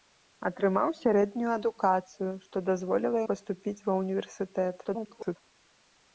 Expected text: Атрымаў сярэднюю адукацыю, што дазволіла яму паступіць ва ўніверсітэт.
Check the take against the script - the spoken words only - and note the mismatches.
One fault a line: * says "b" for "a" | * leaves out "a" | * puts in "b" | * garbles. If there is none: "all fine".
* leaves out "яму"
* garbles